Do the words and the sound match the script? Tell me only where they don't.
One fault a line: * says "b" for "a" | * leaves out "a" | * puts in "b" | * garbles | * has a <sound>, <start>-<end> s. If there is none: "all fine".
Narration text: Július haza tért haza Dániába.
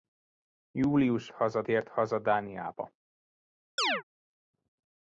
* has a chirp, 3.8-4.0 s